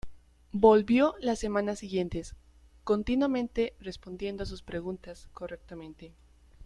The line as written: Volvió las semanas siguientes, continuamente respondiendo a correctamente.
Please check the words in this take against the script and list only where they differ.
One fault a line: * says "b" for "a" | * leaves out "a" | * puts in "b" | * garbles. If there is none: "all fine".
* puts in "sus preguntas"